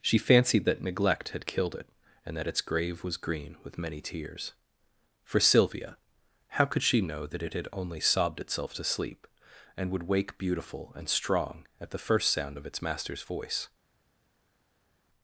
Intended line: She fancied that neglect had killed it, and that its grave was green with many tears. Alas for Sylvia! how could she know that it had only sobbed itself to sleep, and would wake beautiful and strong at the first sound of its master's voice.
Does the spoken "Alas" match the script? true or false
false